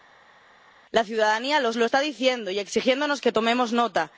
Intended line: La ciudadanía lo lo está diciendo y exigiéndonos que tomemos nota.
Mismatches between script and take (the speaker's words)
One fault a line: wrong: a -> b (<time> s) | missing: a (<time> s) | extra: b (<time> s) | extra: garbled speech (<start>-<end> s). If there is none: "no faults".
no faults